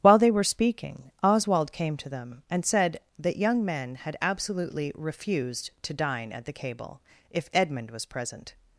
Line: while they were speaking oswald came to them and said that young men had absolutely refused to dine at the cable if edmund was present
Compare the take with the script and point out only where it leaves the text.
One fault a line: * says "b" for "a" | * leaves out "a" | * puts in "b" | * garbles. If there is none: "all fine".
all fine